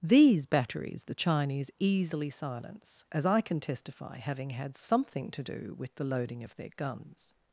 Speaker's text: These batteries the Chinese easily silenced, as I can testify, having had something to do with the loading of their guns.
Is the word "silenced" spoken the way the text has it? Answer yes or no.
no